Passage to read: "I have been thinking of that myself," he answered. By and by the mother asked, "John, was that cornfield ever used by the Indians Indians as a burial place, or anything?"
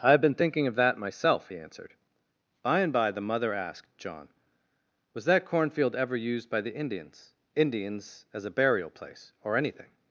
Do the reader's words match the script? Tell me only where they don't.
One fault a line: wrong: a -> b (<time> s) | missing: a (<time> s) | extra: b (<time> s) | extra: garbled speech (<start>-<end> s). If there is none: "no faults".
no faults